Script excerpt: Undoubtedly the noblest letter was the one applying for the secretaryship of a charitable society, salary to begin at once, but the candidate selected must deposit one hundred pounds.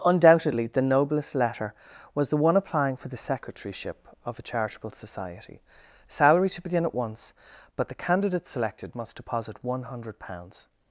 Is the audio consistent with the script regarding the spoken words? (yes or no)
yes